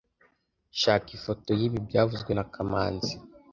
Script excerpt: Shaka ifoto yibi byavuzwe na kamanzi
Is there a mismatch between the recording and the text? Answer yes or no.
no